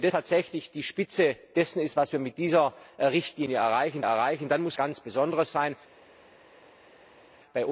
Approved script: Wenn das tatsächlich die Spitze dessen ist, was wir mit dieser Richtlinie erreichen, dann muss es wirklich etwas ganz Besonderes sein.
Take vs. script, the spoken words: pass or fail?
fail